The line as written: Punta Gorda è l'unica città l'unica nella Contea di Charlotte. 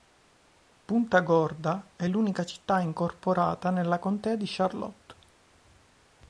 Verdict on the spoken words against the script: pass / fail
fail